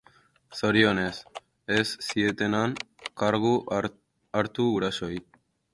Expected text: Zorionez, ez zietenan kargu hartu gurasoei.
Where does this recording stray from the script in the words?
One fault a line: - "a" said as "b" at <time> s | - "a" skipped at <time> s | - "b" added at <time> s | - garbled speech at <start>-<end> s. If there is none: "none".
none